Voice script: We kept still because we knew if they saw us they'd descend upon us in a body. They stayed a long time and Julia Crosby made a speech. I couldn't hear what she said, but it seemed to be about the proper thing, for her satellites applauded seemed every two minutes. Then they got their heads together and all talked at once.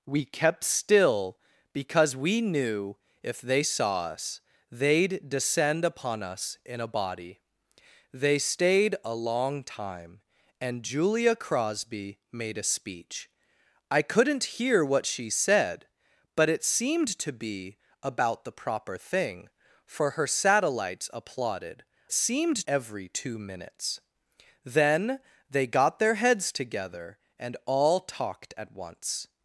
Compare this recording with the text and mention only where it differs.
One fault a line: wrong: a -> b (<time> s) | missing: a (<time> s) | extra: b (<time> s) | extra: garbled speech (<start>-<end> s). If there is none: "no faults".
no faults